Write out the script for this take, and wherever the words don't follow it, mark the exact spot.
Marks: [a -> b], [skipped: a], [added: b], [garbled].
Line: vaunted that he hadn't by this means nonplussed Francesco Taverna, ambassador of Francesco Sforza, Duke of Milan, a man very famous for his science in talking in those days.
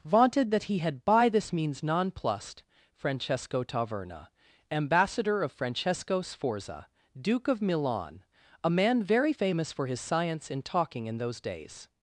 vaunted that he [hadn't -> had] by this means nonplussed Francesco Taverna, ambassador of Francesco Sforza, Duke of Milan, a man very famous for his science in talking in those days.